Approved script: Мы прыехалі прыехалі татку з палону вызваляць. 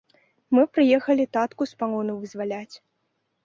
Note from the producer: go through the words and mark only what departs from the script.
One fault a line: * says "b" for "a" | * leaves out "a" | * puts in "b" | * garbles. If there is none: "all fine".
* leaves out "прыехалі"